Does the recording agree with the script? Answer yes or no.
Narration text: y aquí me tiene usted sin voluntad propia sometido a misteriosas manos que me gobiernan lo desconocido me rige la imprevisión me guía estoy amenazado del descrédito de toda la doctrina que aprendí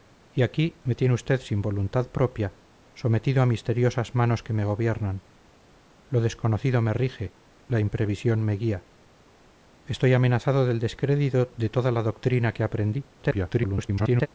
no